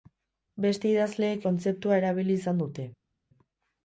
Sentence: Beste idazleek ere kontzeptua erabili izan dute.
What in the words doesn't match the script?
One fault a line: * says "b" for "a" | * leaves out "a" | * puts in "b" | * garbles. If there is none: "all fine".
* leaves out "ere"